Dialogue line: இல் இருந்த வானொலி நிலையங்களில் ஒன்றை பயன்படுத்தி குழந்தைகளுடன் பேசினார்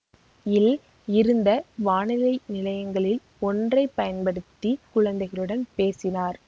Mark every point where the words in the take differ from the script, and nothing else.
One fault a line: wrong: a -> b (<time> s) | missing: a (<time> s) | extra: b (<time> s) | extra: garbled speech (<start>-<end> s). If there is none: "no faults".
no faults